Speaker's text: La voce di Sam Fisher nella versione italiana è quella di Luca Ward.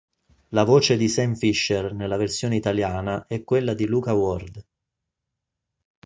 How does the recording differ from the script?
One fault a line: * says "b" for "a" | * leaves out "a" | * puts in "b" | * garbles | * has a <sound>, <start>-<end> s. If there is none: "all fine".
all fine